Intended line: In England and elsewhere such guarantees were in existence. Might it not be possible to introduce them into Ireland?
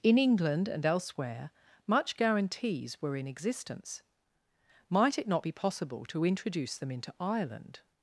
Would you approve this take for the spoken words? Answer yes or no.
no